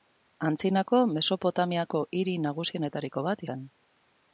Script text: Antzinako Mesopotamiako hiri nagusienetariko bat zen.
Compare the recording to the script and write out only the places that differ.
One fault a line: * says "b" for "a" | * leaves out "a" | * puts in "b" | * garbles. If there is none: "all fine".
all fine